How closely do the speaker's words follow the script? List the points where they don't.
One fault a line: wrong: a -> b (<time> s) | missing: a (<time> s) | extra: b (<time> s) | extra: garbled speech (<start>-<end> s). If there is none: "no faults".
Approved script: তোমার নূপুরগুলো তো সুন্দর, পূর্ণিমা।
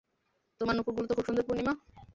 extra: খুব (1.1 s)